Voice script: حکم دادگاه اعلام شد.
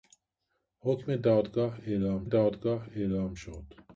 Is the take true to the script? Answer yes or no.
no